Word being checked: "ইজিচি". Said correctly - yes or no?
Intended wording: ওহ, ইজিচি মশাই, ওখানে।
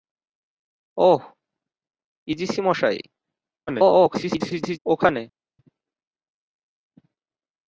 yes